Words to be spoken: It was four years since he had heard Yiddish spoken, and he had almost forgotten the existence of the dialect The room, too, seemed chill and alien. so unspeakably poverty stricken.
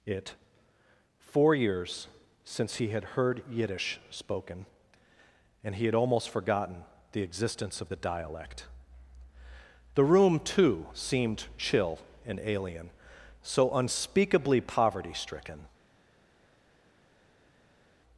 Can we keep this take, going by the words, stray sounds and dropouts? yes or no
no